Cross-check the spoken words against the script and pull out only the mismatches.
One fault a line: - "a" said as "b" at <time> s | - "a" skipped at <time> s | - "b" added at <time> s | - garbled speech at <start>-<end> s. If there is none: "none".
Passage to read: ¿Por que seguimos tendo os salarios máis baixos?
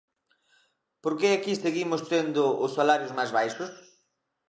- "aquí" added at 1.3 s